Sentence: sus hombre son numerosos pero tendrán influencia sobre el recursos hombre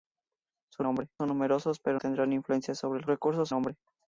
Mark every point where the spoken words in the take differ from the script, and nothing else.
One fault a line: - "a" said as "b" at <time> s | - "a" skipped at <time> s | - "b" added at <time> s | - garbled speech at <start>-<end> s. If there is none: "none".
none